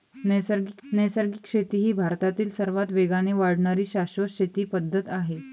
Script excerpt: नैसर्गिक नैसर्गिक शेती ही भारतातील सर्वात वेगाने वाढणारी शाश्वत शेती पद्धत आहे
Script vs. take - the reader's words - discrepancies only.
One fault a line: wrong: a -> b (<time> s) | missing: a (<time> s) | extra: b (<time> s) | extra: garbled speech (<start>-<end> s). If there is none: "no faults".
no faults